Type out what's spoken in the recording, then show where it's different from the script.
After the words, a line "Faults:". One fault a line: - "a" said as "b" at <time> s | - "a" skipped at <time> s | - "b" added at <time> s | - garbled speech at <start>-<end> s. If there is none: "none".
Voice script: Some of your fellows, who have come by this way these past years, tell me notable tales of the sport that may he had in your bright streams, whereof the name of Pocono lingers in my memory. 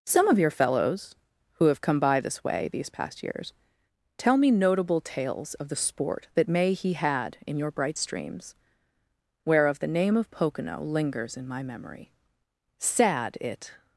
Some of your fellows, who have come by this way these past years, tell me notable tales of the sport that may he had in your bright streams, whereof the name of Pocono lingers in my memory. Sad it
Faults:
- "Sad it" added at 12.8 s